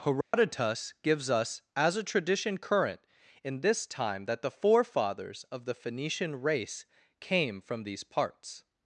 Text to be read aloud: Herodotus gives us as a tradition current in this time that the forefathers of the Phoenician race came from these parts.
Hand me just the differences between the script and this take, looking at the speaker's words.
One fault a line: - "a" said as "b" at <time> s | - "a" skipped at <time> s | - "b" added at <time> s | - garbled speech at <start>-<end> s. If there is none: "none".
none